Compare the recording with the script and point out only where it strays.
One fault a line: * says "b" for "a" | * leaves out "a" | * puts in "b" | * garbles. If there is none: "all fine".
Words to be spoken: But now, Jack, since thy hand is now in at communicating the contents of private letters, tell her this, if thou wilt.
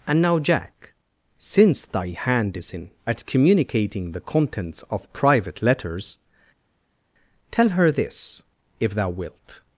* says "And" for "But"
* leaves out "now"